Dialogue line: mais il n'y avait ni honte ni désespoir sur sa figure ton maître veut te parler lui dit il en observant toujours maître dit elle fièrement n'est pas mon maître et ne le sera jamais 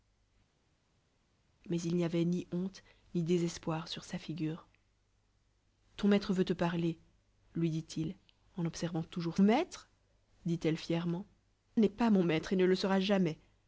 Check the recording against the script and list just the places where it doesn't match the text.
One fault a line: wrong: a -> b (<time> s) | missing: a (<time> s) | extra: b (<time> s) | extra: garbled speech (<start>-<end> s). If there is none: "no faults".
no faults